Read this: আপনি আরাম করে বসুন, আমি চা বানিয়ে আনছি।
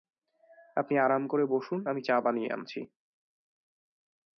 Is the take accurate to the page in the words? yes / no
yes